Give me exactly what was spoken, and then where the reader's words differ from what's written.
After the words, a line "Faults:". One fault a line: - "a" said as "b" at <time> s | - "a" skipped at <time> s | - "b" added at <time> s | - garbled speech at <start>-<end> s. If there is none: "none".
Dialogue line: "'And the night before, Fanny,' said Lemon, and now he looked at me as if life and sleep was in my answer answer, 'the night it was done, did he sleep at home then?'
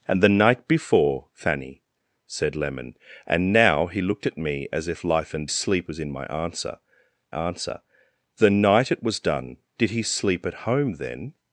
"'And the night before, Fanny,' said Lemon, and now he looked at me as if life and sleep was in my answer answer, 'the night it was done, did he sleep at home then?'
Faults:
none